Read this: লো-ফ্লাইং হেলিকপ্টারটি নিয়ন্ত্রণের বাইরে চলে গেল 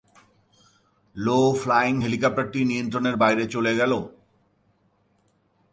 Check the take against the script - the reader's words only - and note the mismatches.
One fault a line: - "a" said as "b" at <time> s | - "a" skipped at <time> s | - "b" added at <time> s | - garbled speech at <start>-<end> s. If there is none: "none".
none